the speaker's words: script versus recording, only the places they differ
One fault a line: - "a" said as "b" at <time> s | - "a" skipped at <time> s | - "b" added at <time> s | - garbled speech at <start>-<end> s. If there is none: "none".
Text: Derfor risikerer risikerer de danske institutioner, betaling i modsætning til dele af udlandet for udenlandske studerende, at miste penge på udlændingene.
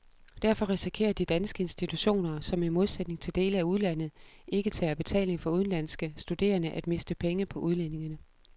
- "risikerer" skipped at 1.1 s
- "betaling" said as "som" at 2.4 s
- "ikke tager betaling" added at 4.5 s